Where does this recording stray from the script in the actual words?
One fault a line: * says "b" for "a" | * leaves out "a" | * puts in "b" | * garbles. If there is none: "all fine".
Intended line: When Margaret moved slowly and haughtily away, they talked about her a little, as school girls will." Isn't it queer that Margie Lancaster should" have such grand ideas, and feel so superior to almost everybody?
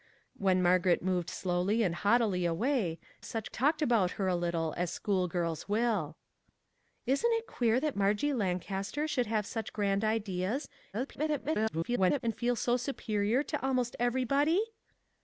* says "such" for "they"
* garbles